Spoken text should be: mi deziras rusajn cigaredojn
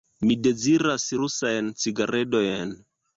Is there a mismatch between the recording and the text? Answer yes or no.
no